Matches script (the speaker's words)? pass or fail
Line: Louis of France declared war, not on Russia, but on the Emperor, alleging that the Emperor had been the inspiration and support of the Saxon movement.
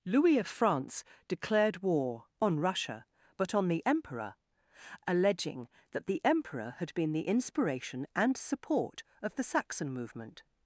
fail